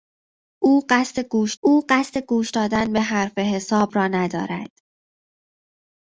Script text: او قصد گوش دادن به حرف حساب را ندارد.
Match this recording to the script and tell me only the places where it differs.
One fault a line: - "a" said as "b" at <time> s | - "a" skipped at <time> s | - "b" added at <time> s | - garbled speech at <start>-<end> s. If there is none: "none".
- "او قصد گوش" added at 1.6 s